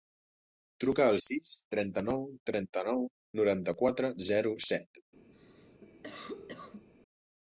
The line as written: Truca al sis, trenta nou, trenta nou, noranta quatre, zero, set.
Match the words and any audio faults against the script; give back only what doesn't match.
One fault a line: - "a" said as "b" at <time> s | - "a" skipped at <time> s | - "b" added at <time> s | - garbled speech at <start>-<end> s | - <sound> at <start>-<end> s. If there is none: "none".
- cough at 5.3-6.9 s